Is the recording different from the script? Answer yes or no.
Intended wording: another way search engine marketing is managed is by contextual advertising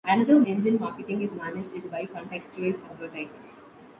yes